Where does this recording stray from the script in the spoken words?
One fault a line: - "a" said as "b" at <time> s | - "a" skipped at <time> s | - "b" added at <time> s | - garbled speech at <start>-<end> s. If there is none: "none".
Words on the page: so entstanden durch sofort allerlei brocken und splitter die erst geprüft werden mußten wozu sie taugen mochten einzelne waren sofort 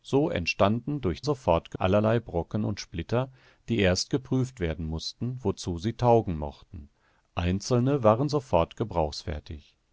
none